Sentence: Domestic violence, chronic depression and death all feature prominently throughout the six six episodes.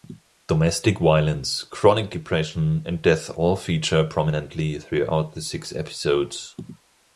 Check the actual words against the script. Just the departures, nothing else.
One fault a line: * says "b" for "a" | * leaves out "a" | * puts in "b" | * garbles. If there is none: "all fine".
* leaves out "six"